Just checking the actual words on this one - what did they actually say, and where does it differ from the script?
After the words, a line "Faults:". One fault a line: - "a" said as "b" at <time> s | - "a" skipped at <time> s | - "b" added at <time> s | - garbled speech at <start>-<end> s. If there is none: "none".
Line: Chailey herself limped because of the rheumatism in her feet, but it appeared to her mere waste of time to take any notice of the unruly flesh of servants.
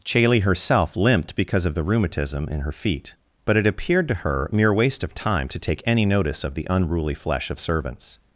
Chailey herself limped because of the rheumatism in her feet, but it appeared to her mere waste of time to take any notice of the unruly flesh of servants.
Faults:
none